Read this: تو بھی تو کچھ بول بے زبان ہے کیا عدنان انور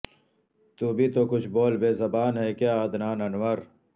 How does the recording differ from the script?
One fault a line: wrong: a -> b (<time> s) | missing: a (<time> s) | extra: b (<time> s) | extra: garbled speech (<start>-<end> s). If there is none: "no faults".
no faults